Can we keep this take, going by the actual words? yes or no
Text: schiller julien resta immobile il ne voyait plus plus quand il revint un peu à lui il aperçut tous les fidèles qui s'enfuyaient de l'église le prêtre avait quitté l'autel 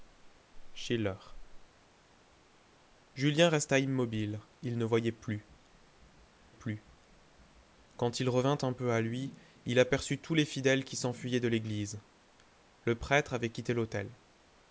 yes